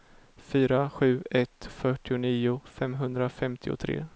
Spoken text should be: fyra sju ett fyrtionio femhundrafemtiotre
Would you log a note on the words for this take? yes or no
no